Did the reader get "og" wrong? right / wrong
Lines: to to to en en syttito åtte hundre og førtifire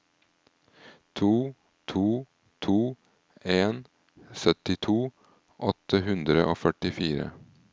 right